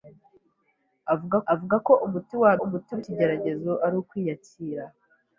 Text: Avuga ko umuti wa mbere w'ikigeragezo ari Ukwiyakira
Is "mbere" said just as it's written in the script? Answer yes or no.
no